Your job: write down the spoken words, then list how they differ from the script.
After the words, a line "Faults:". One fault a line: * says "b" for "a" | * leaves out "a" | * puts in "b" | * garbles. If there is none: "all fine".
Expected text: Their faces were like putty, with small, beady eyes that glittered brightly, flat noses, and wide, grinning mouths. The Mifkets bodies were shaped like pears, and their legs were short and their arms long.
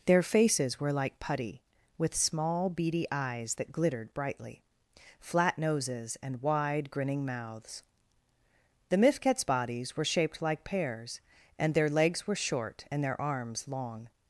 Their faces were like putty, with small, beady eyes that glittered brightly, flat noses, and wide, grinning mouths. The Mifkets bodies were shaped like pears, and their legs were short and their arms long.
Faults:
all fine